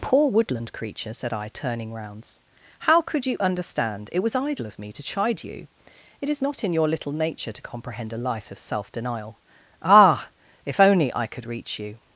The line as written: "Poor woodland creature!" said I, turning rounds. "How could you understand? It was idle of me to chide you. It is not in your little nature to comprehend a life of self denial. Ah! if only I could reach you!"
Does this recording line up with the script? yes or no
yes